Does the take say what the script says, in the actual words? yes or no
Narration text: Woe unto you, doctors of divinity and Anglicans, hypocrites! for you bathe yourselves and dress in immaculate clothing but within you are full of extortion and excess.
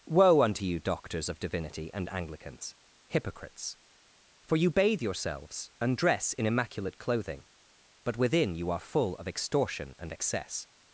yes